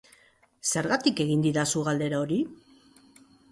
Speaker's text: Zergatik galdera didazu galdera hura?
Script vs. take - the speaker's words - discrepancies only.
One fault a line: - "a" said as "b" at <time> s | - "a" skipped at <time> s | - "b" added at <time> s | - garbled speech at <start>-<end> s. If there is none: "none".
- "galdera" said as "egin" at 1.3 s
- "hura" said as "hori" at 2.2 s